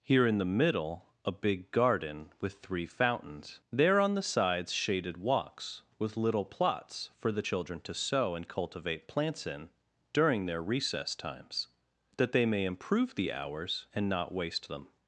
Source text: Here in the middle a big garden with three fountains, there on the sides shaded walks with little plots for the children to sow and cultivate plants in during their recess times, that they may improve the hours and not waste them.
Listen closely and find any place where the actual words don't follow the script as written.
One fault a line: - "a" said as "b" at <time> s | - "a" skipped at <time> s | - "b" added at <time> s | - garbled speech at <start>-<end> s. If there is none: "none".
none